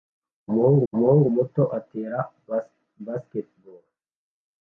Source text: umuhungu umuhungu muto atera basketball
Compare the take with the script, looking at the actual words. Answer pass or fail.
pass